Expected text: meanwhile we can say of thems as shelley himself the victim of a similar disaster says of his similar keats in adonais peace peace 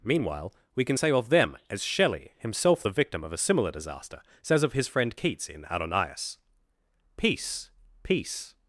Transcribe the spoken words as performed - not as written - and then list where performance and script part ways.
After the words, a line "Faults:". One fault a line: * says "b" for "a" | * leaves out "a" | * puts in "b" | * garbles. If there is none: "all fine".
meanwhile we can say of them as shelley himself the victim of a similar disaster says of his friend keats in adonais peace peace
Faults:
* says "them" for "thems"
* says "friend" for "similar"